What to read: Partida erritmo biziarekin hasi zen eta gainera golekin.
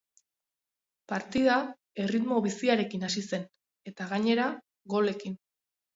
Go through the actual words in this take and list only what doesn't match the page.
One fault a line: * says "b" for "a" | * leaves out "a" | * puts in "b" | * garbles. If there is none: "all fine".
all fine